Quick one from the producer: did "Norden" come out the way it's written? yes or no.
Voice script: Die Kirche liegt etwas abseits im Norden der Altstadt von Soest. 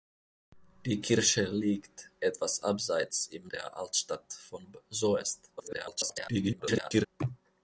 no